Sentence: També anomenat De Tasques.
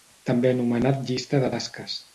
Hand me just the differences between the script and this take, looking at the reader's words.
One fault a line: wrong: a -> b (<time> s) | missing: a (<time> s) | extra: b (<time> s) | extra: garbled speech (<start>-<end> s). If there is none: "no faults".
extra: Llista (1.1 s)